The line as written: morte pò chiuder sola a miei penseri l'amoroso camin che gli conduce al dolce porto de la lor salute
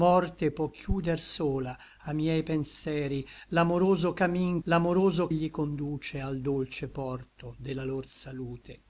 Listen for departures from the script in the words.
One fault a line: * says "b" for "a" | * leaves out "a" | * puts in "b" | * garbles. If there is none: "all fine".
* says "l'amoroso" for "che"